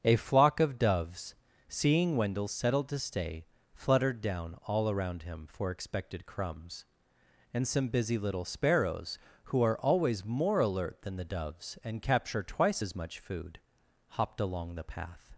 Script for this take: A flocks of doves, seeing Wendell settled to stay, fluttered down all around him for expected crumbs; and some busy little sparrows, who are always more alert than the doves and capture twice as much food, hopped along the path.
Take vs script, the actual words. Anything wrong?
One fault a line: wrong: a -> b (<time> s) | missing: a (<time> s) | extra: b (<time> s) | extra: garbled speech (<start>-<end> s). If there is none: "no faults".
wrong: flocks -> flock (0.1 s)